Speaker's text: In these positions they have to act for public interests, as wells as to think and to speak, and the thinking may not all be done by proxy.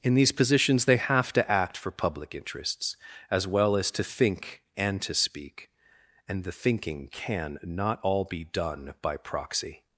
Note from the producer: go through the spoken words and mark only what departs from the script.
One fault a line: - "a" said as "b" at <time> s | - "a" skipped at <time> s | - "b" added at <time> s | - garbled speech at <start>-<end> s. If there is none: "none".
- "wells" said as "well" at 3.5 s
- "may" said as "can" at 7.1 s